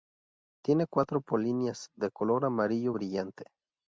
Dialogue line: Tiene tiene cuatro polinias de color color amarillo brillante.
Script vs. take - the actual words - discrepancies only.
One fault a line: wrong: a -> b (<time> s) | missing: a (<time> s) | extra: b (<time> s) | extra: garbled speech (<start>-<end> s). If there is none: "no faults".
missing: tiene (0.9 s)
missing: color (2.4 s)